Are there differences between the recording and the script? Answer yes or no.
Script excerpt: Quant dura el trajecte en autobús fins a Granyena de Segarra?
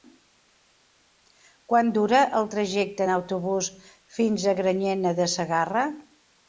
no